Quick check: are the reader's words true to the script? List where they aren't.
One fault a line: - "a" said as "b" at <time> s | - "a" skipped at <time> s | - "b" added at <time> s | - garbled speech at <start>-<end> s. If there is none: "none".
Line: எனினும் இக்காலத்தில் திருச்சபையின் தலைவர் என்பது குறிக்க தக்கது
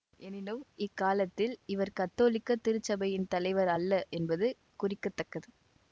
- "இவர் கத்தோலிக்க" added at 1.6 s
- "அல்ல" added at 3.8 s